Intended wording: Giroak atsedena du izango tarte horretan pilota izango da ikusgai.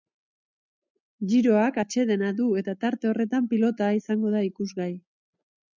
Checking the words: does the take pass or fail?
fail